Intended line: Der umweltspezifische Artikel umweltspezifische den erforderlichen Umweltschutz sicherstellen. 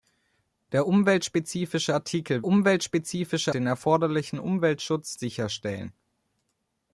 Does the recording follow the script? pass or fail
pass